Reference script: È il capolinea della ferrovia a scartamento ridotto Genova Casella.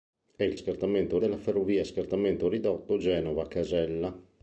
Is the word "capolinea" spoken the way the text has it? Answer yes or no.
no